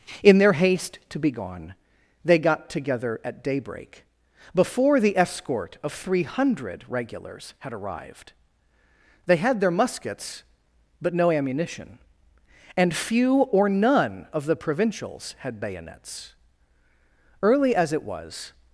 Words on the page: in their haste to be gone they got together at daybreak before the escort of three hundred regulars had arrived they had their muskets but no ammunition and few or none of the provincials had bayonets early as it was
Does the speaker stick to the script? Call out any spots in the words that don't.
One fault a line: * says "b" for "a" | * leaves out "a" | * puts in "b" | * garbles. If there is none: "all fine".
all fine